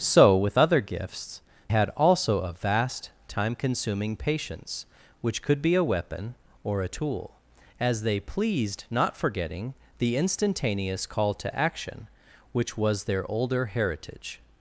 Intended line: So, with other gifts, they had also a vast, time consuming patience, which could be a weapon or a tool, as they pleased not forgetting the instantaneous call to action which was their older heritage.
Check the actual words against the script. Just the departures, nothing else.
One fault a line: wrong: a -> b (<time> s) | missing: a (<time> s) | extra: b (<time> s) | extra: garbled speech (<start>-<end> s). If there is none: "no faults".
missing: they (1.4 s)